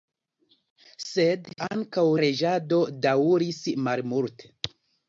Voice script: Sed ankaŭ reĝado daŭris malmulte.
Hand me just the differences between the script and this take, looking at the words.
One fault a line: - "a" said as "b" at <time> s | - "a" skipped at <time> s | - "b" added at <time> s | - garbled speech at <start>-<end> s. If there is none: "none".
none